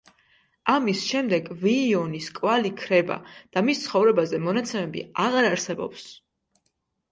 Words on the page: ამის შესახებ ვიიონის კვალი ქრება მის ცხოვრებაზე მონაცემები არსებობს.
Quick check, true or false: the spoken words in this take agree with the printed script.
false